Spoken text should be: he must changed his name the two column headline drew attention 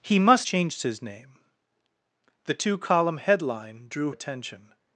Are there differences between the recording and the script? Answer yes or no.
no